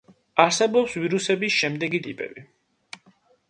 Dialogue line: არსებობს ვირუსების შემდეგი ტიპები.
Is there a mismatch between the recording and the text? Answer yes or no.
no